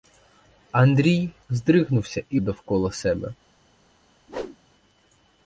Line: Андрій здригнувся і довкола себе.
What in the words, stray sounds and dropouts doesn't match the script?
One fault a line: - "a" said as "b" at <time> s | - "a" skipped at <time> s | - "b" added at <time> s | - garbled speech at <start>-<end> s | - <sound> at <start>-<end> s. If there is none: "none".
- whoosh at 4.3-4.6 s